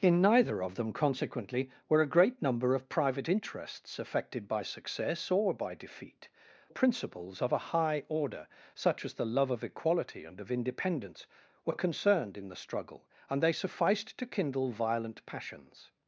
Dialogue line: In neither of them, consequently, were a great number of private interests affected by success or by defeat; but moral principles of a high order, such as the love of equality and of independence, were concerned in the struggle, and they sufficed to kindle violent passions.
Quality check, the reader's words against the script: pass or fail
fail